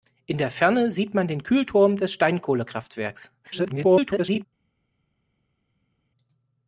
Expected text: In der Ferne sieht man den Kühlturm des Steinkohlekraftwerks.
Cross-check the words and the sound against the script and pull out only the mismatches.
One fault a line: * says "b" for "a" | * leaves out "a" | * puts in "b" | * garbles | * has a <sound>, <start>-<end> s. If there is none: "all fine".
* garbles